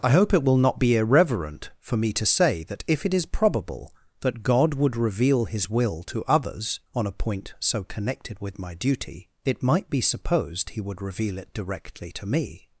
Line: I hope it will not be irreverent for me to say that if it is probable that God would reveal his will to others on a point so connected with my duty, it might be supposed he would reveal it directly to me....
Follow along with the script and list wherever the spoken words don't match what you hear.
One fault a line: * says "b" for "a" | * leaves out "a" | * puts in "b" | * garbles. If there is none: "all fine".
all fine